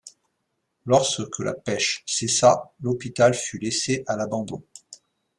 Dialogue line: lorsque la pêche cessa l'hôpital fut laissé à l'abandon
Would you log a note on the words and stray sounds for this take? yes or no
no